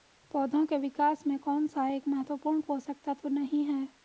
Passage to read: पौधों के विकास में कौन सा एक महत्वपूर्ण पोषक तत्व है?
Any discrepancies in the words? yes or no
yes